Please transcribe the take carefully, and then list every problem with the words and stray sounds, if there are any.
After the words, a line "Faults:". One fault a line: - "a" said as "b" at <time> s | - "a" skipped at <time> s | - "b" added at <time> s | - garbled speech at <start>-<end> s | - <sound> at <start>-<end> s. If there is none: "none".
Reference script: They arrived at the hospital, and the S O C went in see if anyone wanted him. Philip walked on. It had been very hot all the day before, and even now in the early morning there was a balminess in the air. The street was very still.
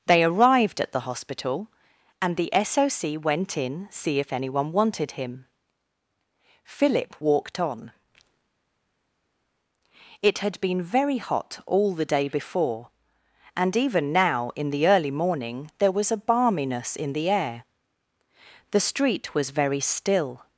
They arrived at the hospital, and the S O C went in see if anyone wanted him. Philip walked on. It had been very hot all the day before, and even now in the early morning there was a balminess in the air. The street was very still.
Faults:
none